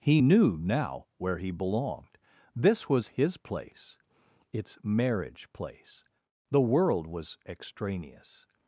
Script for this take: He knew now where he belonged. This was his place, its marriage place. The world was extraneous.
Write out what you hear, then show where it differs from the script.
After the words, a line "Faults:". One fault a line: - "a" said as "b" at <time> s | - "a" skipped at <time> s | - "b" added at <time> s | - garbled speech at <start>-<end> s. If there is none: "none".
He knew now where he belonged. This was his place, its marriage place. The world was extraneous.
Faults:
none